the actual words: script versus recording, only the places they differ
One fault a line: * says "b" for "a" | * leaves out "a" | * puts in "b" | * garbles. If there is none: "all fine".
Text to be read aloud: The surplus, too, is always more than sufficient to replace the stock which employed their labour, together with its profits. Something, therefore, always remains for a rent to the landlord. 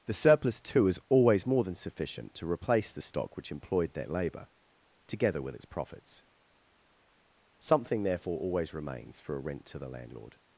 all fine